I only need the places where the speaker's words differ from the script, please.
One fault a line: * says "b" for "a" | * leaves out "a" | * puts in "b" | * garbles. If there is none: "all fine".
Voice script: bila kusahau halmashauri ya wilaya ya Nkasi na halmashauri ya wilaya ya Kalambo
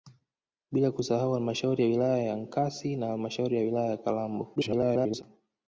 * garbles